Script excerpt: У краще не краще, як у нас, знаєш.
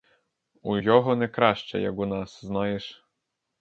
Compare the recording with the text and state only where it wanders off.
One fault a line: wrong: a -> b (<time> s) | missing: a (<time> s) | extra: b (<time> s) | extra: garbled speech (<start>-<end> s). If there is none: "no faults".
wrong: краще -> його (0.7 s)